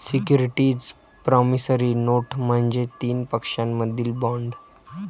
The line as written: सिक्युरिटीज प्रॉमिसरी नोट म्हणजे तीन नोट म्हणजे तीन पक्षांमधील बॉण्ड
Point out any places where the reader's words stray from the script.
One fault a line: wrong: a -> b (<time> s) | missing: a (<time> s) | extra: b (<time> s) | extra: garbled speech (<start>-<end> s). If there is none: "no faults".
missing: नोट म्हणजे तीन (3.2 s)